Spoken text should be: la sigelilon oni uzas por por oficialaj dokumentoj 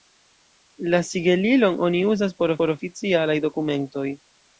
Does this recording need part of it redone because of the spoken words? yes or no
no